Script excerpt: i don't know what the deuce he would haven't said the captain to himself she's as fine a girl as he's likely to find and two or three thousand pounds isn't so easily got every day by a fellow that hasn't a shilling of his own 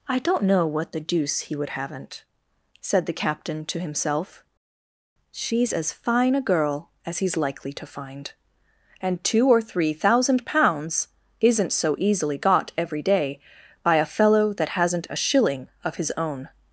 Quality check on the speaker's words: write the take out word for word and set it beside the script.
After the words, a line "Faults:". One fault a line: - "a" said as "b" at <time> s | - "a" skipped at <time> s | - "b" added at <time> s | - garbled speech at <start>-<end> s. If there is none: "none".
i don't know what the deuce he would haven't said the captain to himself she's as fine a girl as he's likely to find and two or three thousand pounds isn't so easily got every day by a fellow that hasn't a shilling of his own
Faults:
none